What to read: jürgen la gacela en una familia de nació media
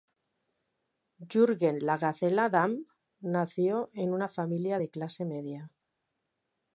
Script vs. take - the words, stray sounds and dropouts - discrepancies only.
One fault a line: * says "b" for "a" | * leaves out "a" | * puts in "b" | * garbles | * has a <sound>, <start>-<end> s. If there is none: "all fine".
* puts in "damm nació"
* says "clase" for "nació"